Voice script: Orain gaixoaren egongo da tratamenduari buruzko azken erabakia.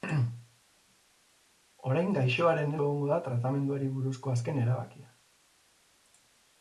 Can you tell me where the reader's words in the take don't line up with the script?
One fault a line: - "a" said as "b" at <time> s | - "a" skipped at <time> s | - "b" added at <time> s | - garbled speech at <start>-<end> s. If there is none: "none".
none